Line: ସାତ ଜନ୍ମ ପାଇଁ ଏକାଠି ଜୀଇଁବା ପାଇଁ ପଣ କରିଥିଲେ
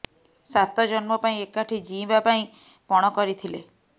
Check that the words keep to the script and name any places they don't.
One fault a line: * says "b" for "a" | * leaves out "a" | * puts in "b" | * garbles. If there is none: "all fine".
all fine